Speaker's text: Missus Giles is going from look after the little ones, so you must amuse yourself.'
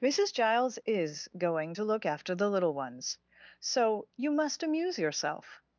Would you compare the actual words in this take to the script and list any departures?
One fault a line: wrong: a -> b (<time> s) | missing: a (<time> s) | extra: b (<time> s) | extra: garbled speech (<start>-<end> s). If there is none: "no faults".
wrong: from -> to (1.7 s)